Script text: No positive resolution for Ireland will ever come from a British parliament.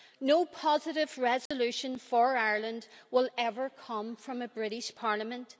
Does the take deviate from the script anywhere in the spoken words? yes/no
no